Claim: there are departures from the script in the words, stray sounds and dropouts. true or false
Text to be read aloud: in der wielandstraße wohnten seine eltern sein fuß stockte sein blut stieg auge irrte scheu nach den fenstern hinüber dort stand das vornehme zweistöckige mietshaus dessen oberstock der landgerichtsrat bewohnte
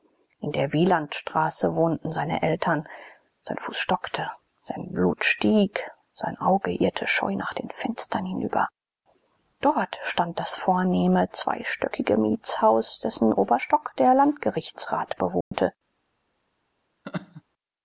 true